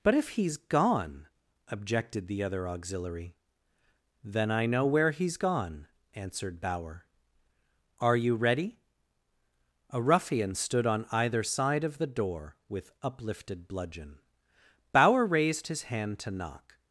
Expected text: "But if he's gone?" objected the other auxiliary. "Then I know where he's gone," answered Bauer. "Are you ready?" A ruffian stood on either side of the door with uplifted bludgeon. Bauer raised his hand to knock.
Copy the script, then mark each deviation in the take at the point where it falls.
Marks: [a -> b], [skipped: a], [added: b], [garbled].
"But if he's gone?" objected the other auxiliary. "Then I know where he's gone," answered Bauer. "Are you ready?" A ruffian stood on either side of the door with uplifted bludgeon. Bauer raised his hand to knock.